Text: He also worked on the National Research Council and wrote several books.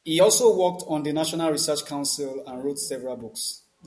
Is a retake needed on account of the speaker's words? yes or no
no